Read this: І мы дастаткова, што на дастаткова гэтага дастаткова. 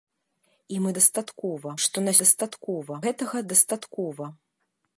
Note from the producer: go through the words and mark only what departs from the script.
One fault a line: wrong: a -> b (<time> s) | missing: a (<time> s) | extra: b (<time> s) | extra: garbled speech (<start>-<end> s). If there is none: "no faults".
no faults